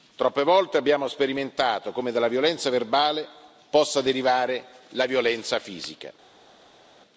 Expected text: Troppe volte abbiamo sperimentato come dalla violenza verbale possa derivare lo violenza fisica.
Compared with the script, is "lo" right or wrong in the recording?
wrong